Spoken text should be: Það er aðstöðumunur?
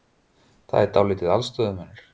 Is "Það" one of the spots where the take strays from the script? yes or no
no